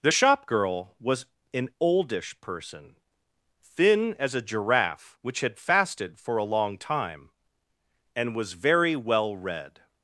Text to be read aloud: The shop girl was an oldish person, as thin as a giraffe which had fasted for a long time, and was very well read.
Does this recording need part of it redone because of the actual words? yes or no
yes